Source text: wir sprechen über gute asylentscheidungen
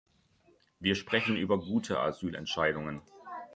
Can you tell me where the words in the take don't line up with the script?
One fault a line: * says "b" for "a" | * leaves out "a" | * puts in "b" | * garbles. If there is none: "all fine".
all fine